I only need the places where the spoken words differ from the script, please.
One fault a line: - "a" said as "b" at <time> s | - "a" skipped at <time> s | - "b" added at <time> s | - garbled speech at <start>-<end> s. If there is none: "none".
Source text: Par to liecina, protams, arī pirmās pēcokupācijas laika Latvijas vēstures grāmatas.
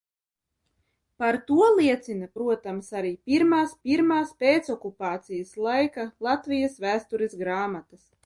- "pirmās" added at 3.9 s